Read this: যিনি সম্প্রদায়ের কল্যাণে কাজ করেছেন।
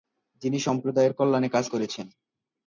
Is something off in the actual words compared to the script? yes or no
no